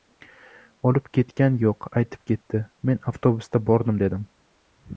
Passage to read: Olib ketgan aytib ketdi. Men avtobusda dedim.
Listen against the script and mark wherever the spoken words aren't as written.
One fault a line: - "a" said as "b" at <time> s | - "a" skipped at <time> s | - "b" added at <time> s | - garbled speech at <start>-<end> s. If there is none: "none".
- "yo‘q" added at 1.6 s
- "bordim" added at 3.7 s